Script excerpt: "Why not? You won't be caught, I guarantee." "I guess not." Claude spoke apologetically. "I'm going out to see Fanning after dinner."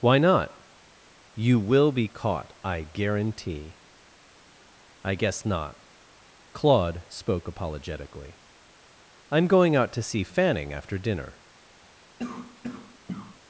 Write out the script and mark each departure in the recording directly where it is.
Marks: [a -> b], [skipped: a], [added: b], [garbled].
"Why not? You [won't -> will] be caught, I guarantee." "I guess not." Claude spoke apologetically. "I'm going out to see Fanning after dinner."